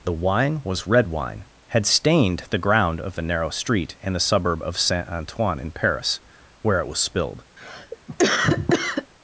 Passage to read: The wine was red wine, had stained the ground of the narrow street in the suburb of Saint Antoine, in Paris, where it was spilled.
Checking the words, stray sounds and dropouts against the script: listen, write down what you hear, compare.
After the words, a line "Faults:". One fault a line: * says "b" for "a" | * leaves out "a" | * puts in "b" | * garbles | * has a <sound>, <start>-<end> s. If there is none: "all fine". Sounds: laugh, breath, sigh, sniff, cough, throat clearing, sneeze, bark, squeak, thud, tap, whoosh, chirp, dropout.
The wine was red wine, had stained the ground of the narrow street in the suburb of Saint Antoine, in Paris, where it was spilled.
Faults:
* has a cough, 7.6-9.1 s